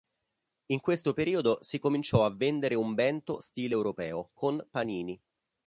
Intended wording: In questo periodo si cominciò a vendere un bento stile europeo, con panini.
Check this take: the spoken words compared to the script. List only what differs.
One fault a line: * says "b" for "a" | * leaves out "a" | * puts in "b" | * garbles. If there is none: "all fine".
all fine